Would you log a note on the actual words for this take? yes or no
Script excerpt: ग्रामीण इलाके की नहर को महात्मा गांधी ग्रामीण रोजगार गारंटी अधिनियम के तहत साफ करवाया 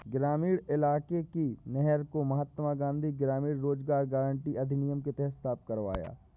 no